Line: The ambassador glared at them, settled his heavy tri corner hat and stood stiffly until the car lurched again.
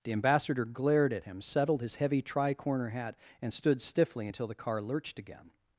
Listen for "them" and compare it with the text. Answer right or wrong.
wrong